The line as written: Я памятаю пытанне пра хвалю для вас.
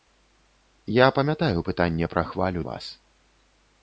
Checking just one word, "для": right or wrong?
wrong